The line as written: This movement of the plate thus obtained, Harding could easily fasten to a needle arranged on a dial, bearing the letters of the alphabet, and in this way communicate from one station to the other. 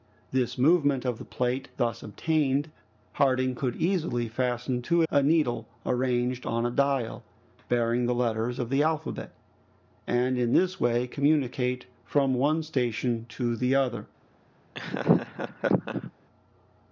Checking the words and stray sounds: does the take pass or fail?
fail